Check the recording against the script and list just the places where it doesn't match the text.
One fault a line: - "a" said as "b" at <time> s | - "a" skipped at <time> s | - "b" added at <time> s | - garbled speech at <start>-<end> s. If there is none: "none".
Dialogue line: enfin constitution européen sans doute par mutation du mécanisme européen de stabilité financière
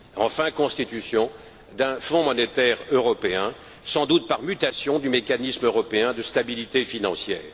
- "d'un fonds monétaire" added at 1.7 s